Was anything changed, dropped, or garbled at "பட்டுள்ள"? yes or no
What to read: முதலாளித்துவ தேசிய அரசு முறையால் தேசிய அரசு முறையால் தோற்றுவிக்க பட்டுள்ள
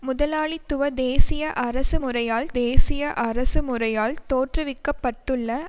no